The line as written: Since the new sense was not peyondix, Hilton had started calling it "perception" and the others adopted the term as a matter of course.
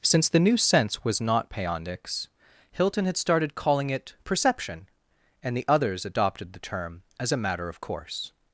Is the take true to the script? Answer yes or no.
yes